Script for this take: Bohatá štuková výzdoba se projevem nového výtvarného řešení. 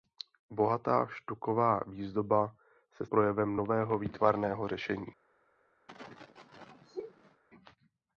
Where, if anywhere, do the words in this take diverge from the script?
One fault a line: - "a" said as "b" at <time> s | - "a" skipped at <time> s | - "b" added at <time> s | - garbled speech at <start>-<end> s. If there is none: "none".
none